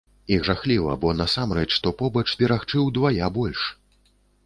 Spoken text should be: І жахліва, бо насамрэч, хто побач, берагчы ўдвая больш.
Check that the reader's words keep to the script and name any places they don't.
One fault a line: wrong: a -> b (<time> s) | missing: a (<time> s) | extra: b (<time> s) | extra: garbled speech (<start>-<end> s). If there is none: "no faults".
no faults